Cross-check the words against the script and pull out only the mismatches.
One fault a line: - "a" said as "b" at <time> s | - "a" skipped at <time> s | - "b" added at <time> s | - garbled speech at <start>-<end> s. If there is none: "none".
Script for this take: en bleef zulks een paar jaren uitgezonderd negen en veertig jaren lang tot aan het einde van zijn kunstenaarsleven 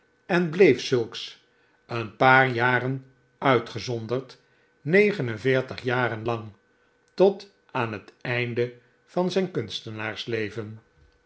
none